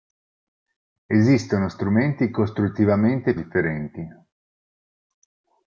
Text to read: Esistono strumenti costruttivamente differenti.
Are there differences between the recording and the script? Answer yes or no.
no